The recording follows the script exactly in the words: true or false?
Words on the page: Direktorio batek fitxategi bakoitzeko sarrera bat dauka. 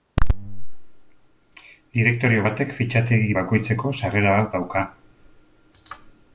true